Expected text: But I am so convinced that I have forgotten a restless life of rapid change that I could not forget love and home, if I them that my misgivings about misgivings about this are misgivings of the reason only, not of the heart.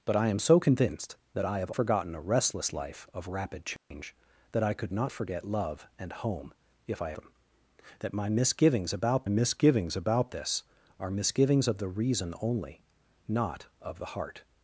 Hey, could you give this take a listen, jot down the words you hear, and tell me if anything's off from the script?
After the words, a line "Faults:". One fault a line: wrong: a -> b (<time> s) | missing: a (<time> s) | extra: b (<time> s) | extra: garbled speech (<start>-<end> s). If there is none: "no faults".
But I am so convinced that I have forgotten a restless life of rapid change that I could not forget love and home, if I them that my misgivings about misgivings about this are misgivings of the reason only, not of the heart.
Faults:
no faults